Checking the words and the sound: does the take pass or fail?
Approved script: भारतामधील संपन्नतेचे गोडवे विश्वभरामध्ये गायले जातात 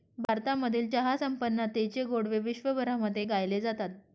fail